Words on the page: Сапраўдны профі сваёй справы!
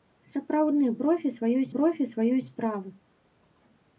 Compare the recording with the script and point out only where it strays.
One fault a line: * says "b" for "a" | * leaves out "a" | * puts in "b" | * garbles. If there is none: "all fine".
* puts in "профі сваёй"